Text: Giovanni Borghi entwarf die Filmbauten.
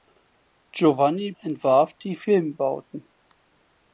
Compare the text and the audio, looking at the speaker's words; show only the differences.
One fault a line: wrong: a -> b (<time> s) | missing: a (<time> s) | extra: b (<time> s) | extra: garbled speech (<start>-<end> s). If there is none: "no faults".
missing: Borghi (1.3 s)